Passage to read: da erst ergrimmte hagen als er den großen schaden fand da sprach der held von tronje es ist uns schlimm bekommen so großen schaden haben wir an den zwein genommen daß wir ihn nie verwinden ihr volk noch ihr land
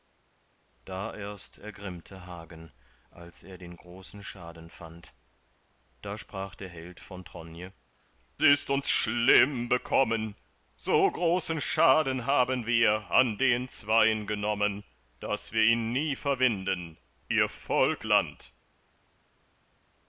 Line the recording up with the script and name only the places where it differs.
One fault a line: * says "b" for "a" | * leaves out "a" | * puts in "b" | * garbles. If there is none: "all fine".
* leaves out "es"
* leaves out "noch ihr"